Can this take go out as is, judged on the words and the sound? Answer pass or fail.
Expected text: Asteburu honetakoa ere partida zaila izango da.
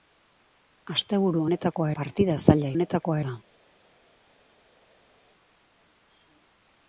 fail